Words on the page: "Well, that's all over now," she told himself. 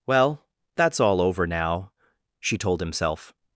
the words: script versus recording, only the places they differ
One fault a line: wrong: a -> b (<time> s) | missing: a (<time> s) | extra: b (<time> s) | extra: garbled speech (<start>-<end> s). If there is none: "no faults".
no faults